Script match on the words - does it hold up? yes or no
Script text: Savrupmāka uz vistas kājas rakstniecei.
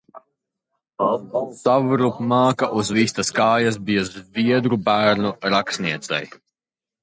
no